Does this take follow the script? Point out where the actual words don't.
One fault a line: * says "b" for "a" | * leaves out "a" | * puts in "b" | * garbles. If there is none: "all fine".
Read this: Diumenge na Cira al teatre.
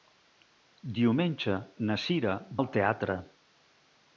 all fine